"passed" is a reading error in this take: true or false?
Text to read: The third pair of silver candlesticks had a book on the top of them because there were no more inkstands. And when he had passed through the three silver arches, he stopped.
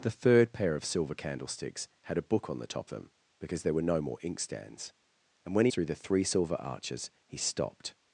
true